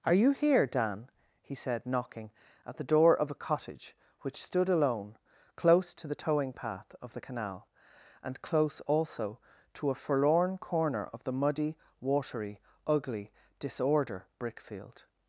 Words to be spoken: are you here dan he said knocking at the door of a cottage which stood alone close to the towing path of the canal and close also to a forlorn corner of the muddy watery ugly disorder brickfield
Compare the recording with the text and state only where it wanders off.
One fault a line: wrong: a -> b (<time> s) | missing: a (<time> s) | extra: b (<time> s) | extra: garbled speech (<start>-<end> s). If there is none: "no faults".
no faults